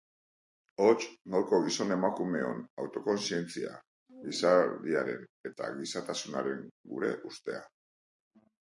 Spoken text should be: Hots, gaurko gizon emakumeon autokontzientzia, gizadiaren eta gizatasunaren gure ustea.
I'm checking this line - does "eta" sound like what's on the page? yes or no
yes